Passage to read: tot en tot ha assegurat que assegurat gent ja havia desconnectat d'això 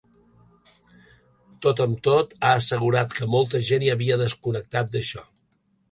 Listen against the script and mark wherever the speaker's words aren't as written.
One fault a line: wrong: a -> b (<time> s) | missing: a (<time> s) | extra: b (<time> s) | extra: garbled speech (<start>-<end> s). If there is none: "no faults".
wrong: en -> amb (1.9 s)
wrong: assegurat -> molta (3.3 s)